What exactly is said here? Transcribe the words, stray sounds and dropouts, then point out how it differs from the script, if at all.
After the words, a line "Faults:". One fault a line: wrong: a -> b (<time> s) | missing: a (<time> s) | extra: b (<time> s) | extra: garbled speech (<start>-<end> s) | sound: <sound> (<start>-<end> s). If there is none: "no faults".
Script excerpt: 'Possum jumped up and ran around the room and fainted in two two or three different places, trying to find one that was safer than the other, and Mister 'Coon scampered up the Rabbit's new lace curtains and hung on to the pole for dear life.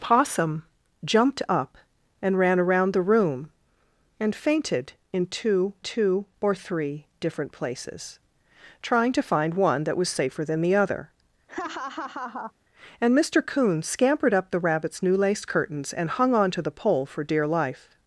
'Possum jumped up and ran around the room and fainted in two two or three different places, trying to find one that was safer than the other, and Mister 'Coon scampered up the Rabbit's new lace curtains and hung on to the pole for dear life.
Faults:
sound: laugh (11.5-12.5 s)